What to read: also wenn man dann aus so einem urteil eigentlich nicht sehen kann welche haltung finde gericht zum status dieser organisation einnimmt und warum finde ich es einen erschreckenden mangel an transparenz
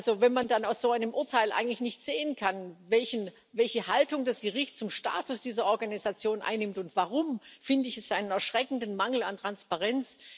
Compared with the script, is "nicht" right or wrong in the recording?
right